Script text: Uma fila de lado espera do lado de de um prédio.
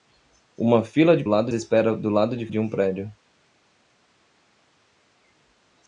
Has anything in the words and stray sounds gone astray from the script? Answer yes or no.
no